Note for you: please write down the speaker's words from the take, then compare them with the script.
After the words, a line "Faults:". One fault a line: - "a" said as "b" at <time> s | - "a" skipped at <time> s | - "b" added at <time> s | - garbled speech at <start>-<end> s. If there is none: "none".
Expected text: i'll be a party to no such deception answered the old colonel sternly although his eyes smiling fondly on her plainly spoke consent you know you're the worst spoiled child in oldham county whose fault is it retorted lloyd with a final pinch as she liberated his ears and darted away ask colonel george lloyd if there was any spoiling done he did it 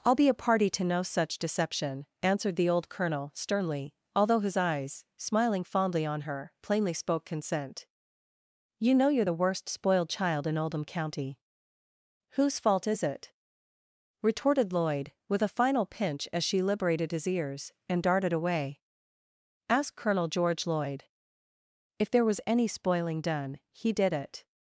i'll be a party to no such deception answered the old colonel sternly although his eyes smiling fondly on her plainly spoke consent you know you're the worst spoiled child in oldham county whose fault is it retorted lloyd with a final pinch as she liberated his ears and darted away ask colonel george lloyd if there was any spoiling done he did it
Faults:
none